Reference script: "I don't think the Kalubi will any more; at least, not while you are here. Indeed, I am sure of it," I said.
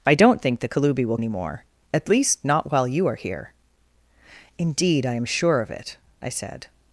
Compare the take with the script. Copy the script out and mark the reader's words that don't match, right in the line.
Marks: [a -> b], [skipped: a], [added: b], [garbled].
"I don't think the Kalubi will any more; at least, not while you are here. Indeed, I am sure of it," I said.